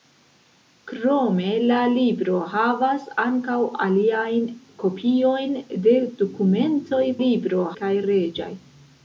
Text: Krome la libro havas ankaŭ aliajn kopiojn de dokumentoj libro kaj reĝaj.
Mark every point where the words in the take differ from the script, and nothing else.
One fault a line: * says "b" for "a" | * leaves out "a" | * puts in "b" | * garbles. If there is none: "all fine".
all fine